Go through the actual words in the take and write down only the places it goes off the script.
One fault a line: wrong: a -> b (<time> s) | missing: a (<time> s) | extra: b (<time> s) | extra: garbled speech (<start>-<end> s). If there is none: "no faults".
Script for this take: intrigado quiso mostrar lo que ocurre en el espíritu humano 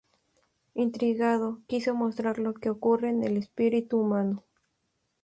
no faults